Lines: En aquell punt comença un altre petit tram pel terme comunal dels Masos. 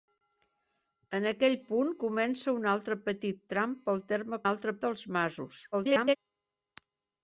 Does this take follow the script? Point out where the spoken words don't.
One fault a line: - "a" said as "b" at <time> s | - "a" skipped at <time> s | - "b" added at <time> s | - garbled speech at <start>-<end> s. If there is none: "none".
- "comunal" said as "altre" at 4.5 s
- garbled speech at 5.7-6.2 s